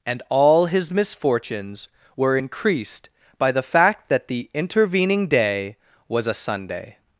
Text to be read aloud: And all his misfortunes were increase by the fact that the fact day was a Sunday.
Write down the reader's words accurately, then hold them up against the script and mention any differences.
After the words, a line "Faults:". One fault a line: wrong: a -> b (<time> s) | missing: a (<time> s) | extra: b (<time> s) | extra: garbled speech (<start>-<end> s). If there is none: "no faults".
And all his misfortunes were increased by the fact that the intervening day was a Sunday.
Faults:
wrong: increase -> increased (2.3 s)
wrong: fact -> intervening (4.5 s)